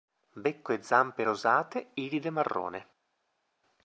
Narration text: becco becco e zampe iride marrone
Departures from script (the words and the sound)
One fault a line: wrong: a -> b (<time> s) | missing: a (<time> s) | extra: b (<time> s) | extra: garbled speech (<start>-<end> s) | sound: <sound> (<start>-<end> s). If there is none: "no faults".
missing: becco (0.7 s)
extra: rosate (1.2 s)